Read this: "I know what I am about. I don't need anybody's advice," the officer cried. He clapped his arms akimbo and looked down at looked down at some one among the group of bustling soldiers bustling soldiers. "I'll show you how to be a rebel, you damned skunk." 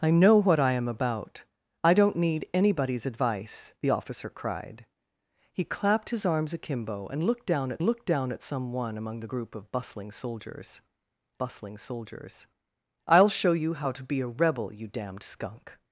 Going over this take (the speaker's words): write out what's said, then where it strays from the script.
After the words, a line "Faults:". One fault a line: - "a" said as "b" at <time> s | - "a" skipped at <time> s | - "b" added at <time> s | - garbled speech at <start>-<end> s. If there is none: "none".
"I know what I am about. I don't need anybody's advice," the officer cried. He clapped his arms akimbo and looked down at looked down at some one among the group of bustling soldiers bustling soldiers. "I'll show you how to be a rebel, you damned skunk."
Faults:
none